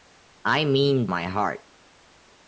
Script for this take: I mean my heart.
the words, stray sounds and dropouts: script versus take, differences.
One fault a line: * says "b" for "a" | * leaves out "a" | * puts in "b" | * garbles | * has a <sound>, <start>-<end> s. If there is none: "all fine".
all fine